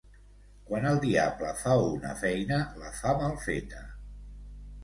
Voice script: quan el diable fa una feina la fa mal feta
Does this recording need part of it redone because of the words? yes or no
no